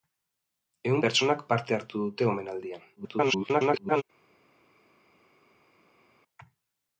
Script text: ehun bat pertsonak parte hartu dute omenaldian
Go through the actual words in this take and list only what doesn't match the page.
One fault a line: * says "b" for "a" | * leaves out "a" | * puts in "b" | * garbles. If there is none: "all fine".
* leaves out "bat"
* garbles